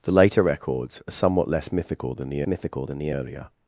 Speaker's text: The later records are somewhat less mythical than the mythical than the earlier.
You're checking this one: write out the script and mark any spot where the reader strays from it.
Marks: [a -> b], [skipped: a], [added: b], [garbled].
The later records are somewhat less mythical than the mythical than the earlier.